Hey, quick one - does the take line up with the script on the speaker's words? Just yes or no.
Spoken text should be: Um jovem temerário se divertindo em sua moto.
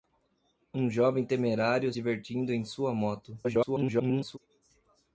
no